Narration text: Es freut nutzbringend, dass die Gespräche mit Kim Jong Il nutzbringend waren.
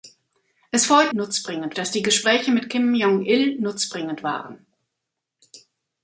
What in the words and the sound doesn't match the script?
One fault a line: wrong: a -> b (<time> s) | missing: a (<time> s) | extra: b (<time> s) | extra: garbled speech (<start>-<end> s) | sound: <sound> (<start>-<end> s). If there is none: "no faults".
no faults